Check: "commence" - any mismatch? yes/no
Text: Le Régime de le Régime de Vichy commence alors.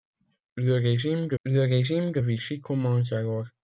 no